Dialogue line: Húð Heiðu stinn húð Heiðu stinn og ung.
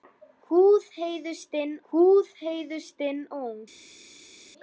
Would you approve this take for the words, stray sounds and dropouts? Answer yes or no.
yes